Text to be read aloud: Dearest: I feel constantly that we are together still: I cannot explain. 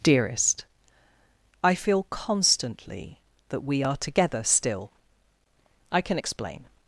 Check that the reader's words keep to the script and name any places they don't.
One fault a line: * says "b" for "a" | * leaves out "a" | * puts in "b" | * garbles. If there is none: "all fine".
* says "can" for "cannot"